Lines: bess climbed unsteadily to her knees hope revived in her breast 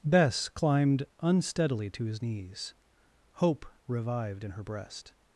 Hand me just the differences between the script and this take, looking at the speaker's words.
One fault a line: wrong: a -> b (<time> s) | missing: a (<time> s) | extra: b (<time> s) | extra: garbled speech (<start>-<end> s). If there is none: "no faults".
wrong: her -> his (2.0 s)